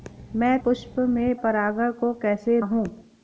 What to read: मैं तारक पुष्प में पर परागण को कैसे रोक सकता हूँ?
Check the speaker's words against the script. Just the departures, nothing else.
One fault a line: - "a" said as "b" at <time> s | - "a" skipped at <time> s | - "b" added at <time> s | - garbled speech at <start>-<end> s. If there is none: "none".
- "तारक" skipped at 0.6 s
- "पर" skipped at 1.4 s
- "रोक सकता" skipped at 2.6 s